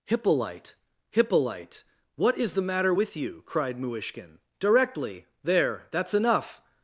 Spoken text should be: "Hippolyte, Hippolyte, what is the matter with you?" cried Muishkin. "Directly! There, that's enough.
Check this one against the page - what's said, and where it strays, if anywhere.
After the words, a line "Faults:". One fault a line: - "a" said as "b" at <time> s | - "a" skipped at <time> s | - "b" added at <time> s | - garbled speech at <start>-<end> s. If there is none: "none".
"Hippolyte, Hippolyte, what is the matter with you?" cried Muishkin. "Directly! There, that's enough.
Faults:
none